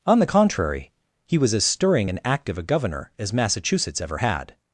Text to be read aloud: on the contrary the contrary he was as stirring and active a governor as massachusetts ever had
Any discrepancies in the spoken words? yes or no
yes